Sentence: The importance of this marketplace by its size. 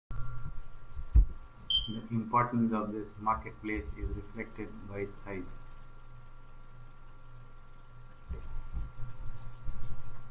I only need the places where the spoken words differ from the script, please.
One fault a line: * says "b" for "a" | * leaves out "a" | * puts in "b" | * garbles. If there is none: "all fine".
* puts in "is reflected"